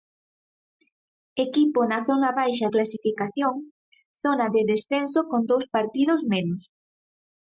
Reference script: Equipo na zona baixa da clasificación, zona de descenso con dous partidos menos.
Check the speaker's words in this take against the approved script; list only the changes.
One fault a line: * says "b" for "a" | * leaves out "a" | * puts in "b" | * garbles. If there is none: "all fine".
* leaves out "da"